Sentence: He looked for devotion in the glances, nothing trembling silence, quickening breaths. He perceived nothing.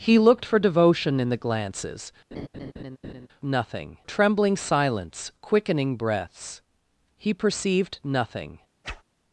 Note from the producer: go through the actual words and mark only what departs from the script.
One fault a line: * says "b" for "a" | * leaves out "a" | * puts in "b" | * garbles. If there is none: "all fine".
all fine